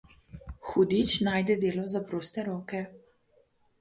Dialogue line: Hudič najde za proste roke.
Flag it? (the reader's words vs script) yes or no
yes